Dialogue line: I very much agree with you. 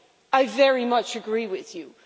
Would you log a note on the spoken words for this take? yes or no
no